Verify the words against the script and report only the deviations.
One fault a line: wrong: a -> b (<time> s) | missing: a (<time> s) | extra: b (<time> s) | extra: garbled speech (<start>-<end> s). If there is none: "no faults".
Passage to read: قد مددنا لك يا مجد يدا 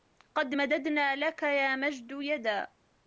no faults